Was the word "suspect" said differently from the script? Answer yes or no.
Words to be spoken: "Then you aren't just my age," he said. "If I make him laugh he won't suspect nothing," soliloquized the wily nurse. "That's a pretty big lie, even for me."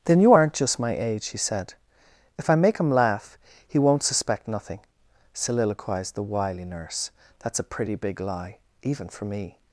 no